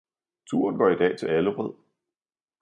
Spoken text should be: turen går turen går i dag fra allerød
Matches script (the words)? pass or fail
fail